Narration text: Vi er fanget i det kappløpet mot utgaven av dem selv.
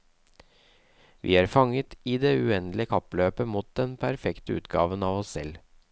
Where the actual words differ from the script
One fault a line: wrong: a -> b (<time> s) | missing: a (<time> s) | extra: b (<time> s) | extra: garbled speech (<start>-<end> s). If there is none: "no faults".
extra: uendelige (2.4 s)
extra: den perfekte (3.8 s)
wrong: dem -> oss (5.2 s)